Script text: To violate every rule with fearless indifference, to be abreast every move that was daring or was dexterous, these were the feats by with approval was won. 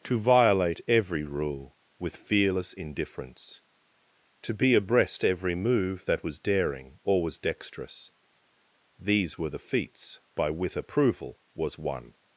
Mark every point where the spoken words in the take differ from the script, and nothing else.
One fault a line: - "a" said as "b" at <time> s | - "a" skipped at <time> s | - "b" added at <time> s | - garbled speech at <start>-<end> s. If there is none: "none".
none